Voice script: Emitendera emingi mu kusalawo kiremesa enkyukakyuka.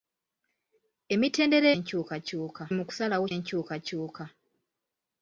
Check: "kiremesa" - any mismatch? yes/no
yes